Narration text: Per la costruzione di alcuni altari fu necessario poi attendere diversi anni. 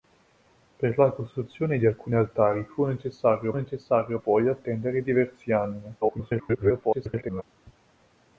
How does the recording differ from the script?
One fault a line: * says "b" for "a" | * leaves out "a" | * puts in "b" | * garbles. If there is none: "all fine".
* puts in "necessario"
* garbles